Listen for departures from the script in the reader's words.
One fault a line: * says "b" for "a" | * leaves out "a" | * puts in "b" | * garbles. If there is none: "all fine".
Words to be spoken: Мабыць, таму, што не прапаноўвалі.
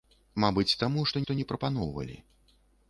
* puts in "што"